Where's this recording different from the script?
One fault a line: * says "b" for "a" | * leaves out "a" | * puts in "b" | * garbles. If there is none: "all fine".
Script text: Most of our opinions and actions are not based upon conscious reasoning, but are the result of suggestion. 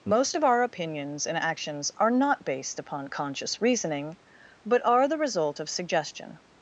all fine